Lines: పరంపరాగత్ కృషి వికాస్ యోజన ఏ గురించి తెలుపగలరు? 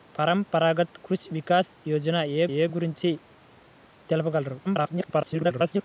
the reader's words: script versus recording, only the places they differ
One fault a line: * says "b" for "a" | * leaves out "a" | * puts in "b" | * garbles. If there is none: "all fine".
* puts in "ఏ"
* garbles